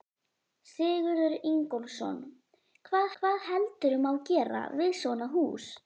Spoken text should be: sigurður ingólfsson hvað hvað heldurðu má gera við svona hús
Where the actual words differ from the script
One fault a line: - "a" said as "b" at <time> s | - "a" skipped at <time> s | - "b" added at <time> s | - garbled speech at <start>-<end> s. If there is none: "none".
none